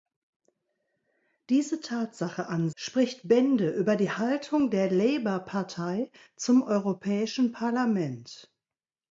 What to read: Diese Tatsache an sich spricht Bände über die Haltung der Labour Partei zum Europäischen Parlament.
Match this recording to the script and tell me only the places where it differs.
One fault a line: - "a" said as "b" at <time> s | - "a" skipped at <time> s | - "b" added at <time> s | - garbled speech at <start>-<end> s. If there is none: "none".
- "sich" skipped at 2.7 s